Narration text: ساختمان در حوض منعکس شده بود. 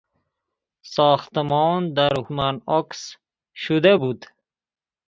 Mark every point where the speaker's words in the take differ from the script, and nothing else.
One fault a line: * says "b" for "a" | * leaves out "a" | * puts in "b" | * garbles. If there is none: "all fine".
* leaves out "حوض"